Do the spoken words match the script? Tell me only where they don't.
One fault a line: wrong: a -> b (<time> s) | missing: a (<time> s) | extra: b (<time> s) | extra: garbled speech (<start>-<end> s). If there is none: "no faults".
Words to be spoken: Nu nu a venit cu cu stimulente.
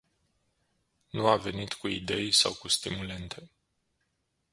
missing: nu (1.3 s)
extra: idei sau (1.9 s)